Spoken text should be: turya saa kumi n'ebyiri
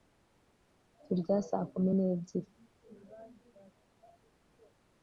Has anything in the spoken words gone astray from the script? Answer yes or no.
no